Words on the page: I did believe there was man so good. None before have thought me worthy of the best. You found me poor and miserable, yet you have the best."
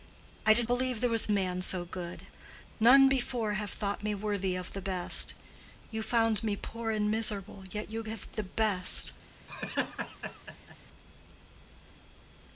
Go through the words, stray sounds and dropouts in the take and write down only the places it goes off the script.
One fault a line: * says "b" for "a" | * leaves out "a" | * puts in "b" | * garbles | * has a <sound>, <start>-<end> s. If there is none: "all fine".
* has a laugh, 9.5-10.8 s